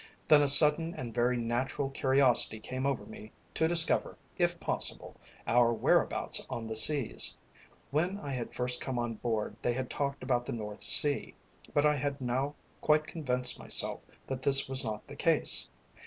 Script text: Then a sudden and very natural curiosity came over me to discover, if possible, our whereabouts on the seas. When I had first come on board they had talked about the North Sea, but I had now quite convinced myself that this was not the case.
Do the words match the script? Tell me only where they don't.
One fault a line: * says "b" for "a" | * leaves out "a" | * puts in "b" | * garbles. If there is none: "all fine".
all fine